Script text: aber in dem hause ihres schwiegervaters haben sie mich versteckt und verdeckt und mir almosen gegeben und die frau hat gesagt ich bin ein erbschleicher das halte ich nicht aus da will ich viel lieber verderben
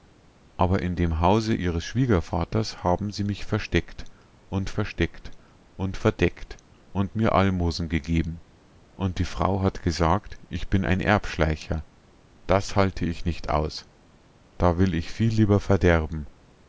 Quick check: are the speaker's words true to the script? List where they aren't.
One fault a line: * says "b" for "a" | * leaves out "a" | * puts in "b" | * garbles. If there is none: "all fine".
* puts in "versteckt und"